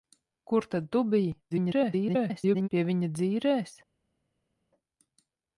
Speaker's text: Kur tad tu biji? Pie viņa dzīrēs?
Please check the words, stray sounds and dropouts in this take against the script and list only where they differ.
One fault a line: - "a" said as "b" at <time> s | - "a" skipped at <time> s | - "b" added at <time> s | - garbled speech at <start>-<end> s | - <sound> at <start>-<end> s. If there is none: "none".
- garbled speech at 1.5-2.7 s